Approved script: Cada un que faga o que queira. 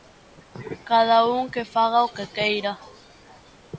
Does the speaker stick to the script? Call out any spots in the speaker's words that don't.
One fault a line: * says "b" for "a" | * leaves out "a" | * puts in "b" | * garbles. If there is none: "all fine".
all fine